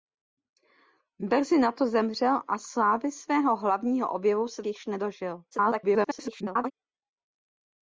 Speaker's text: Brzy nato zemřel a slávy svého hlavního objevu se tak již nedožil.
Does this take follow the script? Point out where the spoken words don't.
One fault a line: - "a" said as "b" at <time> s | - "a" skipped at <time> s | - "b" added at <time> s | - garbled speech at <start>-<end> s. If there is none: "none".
- "tak" skipped at 4.6 s
- garbled speech at 5.5-6.7 s